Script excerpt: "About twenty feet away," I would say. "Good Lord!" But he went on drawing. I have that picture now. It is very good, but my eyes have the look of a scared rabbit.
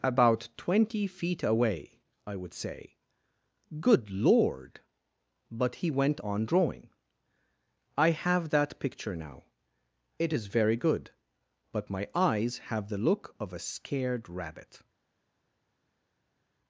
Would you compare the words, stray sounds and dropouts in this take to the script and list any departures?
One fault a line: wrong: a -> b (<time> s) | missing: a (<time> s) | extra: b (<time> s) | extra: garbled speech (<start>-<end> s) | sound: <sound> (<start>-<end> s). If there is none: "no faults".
no faults